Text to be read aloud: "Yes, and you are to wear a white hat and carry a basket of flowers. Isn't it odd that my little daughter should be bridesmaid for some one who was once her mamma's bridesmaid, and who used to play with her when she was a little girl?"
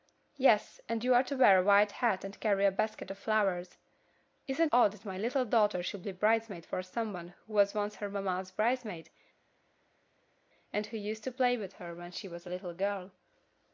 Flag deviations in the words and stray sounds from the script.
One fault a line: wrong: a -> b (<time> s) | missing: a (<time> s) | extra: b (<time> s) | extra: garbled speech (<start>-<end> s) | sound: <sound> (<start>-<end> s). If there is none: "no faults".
missing: it (4.7 s)